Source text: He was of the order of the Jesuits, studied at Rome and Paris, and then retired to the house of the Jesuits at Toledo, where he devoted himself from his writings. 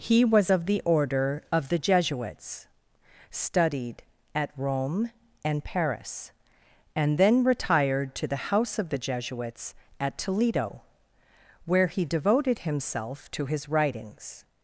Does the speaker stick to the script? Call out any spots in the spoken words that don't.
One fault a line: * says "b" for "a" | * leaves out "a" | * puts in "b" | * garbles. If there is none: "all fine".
* says "to" for "from"